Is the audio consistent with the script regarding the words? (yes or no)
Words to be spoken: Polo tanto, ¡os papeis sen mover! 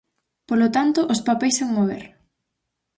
yes